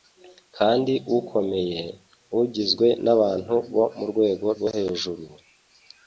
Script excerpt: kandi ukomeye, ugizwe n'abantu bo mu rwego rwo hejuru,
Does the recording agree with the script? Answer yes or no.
yes